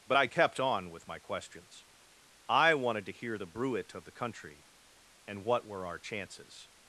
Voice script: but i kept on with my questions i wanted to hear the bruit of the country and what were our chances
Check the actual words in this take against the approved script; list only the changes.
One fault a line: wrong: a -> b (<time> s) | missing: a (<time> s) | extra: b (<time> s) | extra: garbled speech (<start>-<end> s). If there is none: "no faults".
no faults